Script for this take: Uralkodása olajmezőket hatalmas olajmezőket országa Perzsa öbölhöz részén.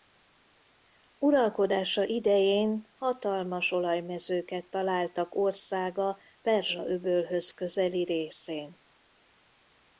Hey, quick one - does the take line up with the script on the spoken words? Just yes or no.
no